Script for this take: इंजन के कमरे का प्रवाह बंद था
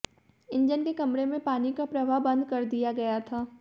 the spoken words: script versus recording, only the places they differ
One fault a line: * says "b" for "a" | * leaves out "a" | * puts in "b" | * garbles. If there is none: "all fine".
* puts in "में पानी"
* puts in "कर दिया गया"